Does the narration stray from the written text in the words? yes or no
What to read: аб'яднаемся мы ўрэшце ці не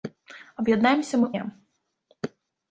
yes